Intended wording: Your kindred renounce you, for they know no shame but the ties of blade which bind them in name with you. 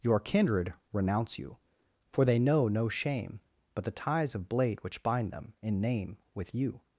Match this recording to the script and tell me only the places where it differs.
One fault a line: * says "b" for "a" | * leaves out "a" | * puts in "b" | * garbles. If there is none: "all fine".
all fine